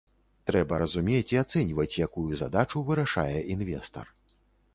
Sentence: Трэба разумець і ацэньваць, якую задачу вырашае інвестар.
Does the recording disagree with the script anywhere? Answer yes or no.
no